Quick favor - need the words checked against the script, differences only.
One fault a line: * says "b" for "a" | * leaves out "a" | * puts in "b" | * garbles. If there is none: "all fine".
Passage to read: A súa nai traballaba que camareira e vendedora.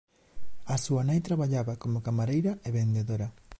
* says "como" for "que"